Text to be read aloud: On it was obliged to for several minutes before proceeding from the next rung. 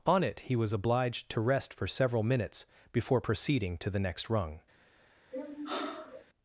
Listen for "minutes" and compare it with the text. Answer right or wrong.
right